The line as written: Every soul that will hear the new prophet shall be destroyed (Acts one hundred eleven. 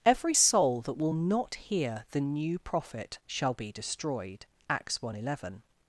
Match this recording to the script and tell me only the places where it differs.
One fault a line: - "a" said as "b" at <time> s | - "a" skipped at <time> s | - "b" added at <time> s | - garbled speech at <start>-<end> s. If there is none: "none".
- "not" added at 1.1 s